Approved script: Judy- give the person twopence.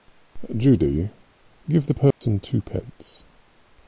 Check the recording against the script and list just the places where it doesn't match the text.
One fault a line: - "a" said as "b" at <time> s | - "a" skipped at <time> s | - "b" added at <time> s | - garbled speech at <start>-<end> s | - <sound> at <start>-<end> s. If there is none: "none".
- dropout at 2.1-2.2 s